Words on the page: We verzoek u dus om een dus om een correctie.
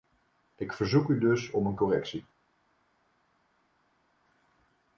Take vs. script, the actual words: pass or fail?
fail